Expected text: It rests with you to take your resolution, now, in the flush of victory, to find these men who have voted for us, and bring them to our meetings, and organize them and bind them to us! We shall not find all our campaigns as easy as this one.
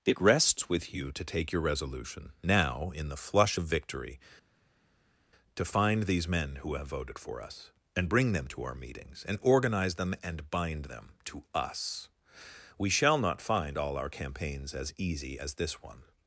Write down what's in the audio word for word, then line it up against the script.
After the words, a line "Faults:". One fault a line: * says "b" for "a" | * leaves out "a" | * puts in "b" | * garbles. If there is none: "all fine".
It rests with you to take your resolution, now, in the flush of victory, to find these men who have voted for us, and bring them to our meetings, and organize them and bind them to us! We shall not find all our campaigns as easy as this one.
Faults:
all fine